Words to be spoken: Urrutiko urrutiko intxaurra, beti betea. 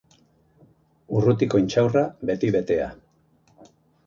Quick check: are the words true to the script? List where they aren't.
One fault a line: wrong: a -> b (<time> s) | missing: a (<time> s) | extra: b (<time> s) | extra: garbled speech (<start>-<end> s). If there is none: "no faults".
missing: urrutiko (1.6 s)